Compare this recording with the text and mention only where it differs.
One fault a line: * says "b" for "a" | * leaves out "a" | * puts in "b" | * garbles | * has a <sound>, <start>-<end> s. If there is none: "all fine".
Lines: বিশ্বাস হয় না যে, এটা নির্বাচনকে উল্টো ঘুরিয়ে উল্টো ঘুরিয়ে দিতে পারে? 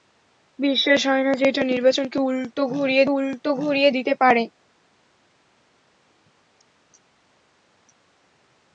all fine